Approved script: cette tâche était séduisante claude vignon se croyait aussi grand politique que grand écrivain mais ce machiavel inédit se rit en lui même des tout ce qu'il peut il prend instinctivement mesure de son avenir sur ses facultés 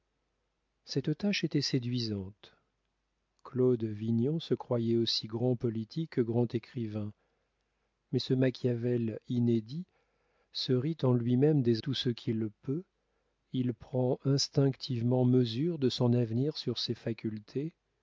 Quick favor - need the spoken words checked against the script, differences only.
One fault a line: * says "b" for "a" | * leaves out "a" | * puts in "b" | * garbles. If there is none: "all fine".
all fine